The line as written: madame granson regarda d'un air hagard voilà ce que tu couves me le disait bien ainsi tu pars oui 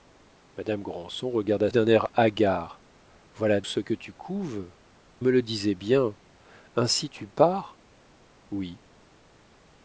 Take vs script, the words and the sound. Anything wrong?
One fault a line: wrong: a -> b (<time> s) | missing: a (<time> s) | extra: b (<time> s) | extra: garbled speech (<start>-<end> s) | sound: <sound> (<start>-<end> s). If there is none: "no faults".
no faults